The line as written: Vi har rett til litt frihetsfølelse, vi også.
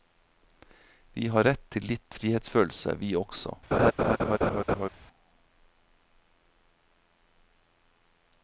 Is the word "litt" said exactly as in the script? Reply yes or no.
yes